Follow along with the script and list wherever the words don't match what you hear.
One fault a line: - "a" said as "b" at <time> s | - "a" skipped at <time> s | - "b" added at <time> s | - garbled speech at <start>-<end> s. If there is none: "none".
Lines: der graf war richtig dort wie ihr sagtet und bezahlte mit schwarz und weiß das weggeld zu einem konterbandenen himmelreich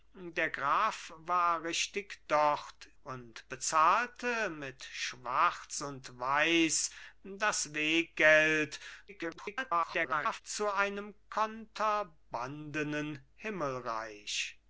- "wie ihr sagtet" skipped at 2.9 s
- garbled speech at 9.1-10.4 s